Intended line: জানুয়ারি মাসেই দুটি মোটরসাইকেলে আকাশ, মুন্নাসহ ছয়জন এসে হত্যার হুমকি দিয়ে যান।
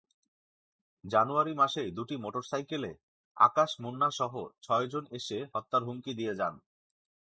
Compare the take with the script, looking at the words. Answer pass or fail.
pass